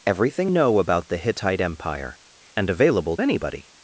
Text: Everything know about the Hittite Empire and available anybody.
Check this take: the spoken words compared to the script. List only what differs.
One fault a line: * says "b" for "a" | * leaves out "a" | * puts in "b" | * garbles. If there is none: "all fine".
all fine